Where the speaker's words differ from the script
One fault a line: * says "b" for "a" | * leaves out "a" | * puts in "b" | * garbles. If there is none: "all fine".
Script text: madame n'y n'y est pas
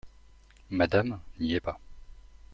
* leaves out "n'y"